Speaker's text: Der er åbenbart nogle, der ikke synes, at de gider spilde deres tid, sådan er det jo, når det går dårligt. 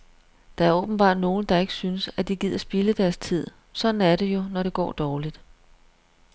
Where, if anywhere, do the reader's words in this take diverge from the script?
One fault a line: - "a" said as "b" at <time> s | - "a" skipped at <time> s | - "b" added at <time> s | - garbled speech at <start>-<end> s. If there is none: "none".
none